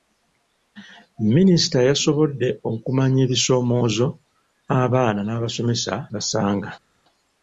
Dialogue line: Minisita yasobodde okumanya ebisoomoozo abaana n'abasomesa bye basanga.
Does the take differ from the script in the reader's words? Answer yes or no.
yes